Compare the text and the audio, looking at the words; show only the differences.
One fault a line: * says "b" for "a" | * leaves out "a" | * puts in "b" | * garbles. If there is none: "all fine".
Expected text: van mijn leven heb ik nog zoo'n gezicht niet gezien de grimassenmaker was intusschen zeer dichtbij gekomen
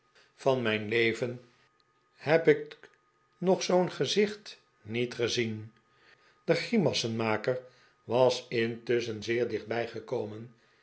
all fine